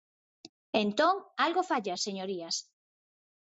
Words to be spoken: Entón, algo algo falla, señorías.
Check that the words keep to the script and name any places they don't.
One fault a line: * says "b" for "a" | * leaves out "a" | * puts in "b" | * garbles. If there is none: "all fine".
* leaves out "algo"